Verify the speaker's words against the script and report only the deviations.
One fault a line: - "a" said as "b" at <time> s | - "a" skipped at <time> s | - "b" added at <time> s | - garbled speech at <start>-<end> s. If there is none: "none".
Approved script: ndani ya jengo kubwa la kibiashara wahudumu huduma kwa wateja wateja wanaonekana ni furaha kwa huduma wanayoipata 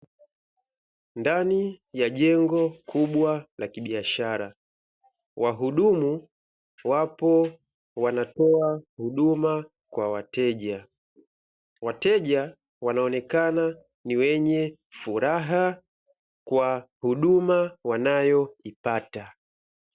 - "wapo wanatoa" added at 6.8 s
- "wenye" added at 14.2 s